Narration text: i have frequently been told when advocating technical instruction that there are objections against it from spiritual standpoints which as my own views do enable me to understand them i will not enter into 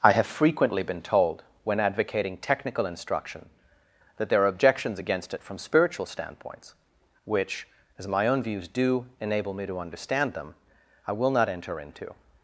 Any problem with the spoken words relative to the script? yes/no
no